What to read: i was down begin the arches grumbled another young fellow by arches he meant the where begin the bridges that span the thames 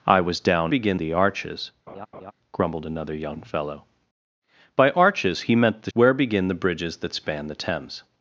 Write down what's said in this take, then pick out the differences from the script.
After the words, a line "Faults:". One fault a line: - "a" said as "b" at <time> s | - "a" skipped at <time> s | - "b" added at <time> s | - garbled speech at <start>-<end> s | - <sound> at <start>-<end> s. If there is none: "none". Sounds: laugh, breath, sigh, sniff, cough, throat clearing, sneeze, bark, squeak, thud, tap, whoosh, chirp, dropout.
i was down begin the arches grumbled another young fellow by arches he meant the where begin the bridges that span the thames
Faults:
- laugh at 1.9-2.3 s